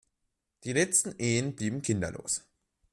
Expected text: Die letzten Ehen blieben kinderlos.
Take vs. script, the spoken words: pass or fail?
pass